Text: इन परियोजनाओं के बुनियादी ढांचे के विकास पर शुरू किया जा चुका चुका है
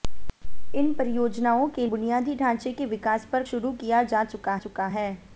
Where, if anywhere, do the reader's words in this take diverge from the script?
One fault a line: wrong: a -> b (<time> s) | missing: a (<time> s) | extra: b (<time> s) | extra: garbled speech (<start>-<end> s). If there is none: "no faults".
no faults